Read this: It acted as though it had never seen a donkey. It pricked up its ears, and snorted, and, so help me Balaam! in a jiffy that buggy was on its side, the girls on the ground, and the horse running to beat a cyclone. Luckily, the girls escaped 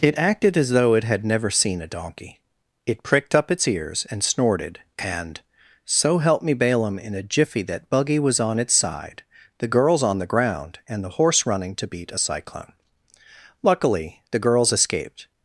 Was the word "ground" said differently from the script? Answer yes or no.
no